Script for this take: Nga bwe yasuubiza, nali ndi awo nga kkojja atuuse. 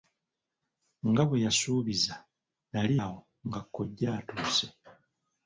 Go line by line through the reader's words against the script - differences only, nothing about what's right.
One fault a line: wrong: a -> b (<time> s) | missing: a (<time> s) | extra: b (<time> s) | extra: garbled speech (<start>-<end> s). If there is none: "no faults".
missing: ndi (3.0 s)